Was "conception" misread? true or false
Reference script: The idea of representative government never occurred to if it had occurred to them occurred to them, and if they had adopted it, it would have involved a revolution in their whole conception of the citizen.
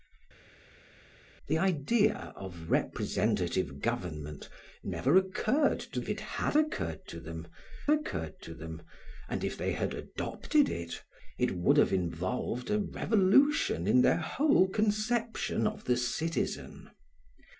false